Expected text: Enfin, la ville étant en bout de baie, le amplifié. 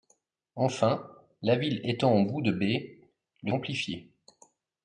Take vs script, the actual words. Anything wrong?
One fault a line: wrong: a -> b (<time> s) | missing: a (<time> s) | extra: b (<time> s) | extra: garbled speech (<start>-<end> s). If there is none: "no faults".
no faults